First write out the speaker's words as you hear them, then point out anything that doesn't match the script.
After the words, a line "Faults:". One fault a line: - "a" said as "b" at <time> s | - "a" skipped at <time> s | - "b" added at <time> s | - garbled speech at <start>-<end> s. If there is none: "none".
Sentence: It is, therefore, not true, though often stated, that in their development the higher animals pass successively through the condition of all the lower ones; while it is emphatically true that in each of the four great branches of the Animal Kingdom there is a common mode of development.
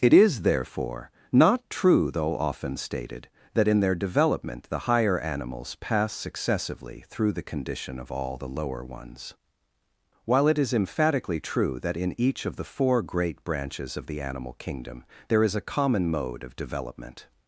It is, therefore, not true, though often stated, that in their development the higher animals pass successively through the condition of all the lower ones; while it is emphatically true that in each of the four great branches of the Animal Kingdom there is a common mode of development.
Faults:
none